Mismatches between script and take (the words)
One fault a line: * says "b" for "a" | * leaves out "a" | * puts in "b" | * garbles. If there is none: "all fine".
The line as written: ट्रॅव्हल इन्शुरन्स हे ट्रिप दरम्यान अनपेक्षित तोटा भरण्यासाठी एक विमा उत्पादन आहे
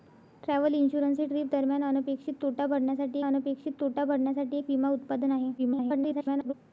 * puts in "अनपेक्षित तोटा भरण्यासाठी"
* garbles